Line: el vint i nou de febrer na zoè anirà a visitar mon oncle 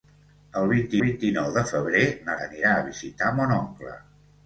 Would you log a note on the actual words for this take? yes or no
yes